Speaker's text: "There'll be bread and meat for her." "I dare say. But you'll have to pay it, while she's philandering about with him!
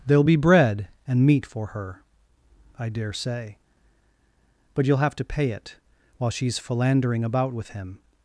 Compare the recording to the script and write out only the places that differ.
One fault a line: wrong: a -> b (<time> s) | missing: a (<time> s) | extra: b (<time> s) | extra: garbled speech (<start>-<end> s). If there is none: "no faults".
no faults